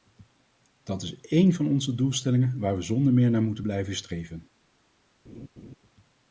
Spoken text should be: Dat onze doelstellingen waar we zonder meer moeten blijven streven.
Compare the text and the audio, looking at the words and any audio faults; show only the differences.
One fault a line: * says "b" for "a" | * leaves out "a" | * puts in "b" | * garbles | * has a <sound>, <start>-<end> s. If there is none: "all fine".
* puts in "is één van"
* puts in "naar"
* has a laugh, 5.2-5.8 s